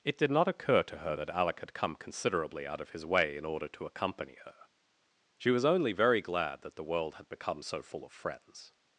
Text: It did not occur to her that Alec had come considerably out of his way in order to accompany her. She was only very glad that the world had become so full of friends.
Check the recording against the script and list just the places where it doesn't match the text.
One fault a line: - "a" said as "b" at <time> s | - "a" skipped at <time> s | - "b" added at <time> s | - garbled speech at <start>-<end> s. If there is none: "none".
none